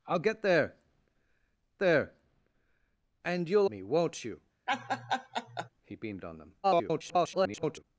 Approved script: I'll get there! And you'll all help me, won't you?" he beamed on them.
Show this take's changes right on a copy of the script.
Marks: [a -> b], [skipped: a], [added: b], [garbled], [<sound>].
I'll get there! [added: there] And you'll [skipped: all help] me, won't you?" [laugh] he beamed on them. [garbled]